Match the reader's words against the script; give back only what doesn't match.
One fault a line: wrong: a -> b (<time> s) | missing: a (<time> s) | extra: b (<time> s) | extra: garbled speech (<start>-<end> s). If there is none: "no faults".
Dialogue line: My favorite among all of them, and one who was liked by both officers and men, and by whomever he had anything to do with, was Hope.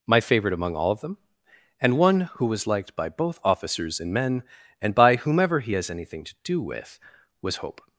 wrong: had -> has (5.7 s)